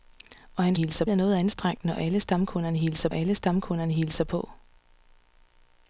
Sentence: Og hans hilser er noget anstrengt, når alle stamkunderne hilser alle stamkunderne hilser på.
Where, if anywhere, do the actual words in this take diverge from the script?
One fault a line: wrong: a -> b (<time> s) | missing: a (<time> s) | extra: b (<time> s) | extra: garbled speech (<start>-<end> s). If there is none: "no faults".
no faults